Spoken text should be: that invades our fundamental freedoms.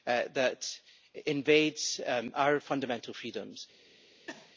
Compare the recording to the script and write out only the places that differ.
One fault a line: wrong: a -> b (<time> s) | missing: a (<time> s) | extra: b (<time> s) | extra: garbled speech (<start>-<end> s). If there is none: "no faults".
no faults